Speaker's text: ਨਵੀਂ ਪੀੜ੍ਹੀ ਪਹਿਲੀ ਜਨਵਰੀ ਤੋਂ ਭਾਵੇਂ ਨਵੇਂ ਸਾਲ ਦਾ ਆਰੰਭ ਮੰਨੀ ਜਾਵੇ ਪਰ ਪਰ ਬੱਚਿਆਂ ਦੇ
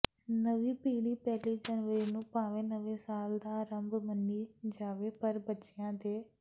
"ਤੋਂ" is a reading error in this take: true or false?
true